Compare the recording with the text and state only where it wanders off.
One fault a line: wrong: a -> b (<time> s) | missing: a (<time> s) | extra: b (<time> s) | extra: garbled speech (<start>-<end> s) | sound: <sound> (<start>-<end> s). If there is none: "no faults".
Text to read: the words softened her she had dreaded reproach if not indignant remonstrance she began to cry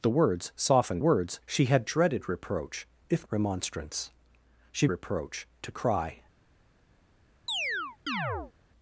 wrong: her -> words (1.0 s)
missing: not indignant (3.3 s)
wrong: began -> reproach (4.9 s)
sound: chirp (7.5-8.5 s)